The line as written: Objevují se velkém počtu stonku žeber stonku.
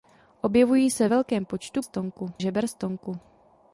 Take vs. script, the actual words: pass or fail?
pass